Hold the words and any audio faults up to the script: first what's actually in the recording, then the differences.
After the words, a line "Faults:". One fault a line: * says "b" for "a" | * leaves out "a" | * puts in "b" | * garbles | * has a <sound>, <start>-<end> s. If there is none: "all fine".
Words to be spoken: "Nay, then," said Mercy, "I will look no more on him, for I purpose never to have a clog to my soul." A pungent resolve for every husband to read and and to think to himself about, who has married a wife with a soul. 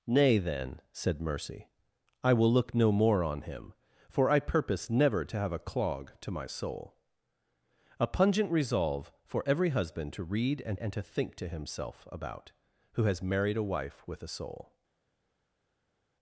"Nay, then," said Mercy, "I will look no more on him, for I purpose never to have a clog to my soul." A pungent resolve for every husband to read and and to think to himself about, who has married a wife with a soul.
Faults:
all fine